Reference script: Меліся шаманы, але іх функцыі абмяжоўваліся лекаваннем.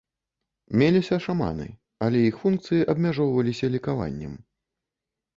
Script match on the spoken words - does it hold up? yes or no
yes